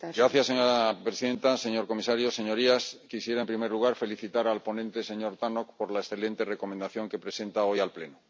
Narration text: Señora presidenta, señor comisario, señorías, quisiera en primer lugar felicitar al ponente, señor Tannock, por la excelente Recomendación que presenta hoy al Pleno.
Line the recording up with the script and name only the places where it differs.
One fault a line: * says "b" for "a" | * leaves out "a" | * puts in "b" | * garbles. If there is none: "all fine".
all fine